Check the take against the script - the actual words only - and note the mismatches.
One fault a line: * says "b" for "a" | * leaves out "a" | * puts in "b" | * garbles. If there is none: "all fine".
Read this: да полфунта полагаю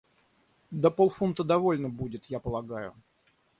* puts in "довольно будет я"